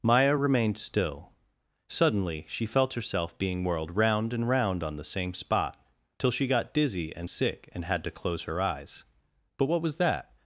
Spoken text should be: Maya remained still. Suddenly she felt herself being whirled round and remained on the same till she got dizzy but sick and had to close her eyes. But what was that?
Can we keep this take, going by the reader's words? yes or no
no